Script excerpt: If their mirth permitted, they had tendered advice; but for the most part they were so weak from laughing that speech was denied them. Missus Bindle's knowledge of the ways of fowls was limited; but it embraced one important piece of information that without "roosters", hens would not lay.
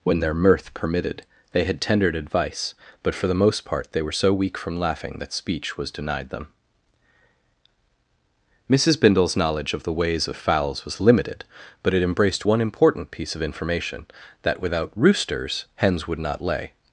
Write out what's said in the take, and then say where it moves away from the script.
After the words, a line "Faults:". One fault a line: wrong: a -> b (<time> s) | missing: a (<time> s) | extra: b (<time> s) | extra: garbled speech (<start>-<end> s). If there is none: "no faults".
When their mirth permitted, they had tendered advice; but for the most part they were so weak from laughing that speech was denied them. Missus Bindle's knowledge of the ways of fowls was limited; but it embraced one important piece of information that without "roosters", hens would not lay.
Faults:
wrong: If -> When (0.0 s)